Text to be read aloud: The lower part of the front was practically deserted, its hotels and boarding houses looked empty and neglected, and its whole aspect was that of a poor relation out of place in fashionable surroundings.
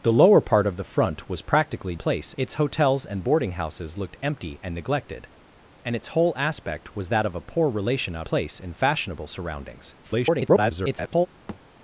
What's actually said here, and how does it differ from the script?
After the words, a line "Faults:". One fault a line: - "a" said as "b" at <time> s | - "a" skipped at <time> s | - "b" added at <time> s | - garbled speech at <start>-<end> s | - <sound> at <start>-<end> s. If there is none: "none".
The lower part of the front was practically place, its hotels and boarding houses looked empty and neglected, and its whole aspect was that of a poor relation out place in fashionable surroundings. [garbled]
Faults:
- "deserted" said as "place" at 2.0 s
- "of" skipped at 8.3 s
- garbled speech at 10.0-11.3 s
- thud at 11.5-11.6 s